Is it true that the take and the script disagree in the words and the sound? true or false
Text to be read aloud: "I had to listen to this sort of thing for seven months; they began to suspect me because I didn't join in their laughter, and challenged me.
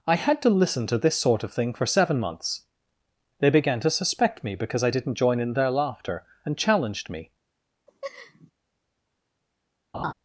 true